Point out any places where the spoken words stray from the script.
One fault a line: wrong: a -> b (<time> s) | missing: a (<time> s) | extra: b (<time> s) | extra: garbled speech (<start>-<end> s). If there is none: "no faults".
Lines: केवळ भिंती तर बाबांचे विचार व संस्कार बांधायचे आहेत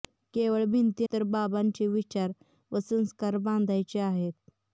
no faults